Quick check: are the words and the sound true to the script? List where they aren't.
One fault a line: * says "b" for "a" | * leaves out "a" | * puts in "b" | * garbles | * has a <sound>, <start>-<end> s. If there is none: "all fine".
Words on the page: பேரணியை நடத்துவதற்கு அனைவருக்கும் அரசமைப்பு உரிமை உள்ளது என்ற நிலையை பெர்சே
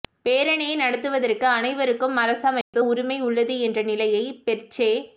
* has a dropout, 2.6-2.7 s